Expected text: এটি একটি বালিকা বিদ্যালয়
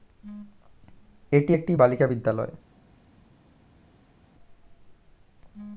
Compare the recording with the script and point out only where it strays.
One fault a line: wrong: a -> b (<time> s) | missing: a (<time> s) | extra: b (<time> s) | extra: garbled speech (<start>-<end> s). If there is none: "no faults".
no faults